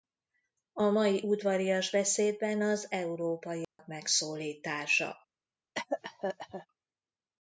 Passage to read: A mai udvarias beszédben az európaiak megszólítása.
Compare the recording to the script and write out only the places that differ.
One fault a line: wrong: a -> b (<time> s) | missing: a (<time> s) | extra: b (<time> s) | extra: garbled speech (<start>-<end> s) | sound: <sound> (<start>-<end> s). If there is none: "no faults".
sound: dropout (3.6-3.8 s)
sound: cough (5.7-6.7 s)